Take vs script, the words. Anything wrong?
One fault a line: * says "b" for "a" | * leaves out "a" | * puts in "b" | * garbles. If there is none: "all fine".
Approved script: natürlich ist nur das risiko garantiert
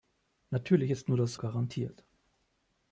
* leaves out "risiko"